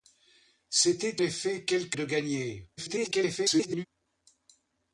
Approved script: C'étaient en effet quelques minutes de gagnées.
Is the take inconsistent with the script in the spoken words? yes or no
yes